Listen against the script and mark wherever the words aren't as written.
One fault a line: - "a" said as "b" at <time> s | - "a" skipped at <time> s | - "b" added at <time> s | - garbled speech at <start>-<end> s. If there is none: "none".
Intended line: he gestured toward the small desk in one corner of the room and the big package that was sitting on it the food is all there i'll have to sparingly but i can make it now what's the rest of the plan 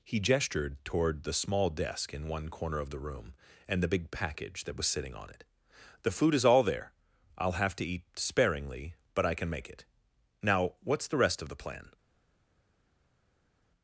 - "eat" added at 7.8 s